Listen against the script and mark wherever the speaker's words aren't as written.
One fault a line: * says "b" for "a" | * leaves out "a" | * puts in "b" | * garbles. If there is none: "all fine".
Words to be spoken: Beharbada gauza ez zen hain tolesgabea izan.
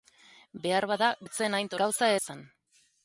* leaves out "gauza"
* says "gauza" for "tolesgabea"